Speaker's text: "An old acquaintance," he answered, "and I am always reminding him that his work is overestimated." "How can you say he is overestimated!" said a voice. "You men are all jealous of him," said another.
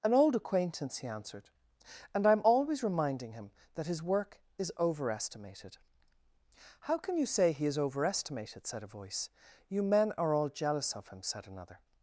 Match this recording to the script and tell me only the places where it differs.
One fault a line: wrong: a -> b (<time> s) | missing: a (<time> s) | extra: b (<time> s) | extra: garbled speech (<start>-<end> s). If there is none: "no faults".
no faults